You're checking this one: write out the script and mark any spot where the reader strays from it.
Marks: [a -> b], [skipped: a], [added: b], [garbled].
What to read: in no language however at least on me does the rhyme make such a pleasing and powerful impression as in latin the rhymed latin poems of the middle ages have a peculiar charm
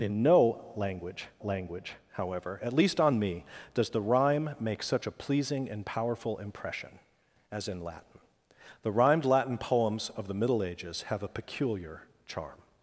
in no language [added: language] however at least on me does the rhyme make such a pleasing and powerful impression as in latin the rhymed latin poems of the middle ages have a peculiar charm